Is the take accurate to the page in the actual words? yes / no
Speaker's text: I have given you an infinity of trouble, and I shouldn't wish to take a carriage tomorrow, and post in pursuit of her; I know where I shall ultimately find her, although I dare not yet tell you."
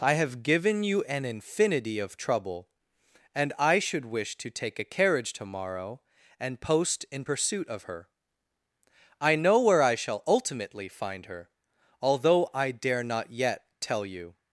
no